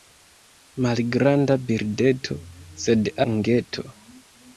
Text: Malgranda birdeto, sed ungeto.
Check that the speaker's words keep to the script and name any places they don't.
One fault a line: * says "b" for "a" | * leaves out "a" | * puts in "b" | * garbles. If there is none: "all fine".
all fine